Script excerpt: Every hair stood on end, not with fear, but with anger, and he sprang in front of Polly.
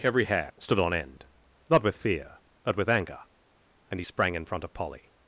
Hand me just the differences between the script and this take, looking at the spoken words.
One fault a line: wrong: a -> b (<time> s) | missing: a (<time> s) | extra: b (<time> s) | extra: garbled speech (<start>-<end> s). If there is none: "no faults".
no faults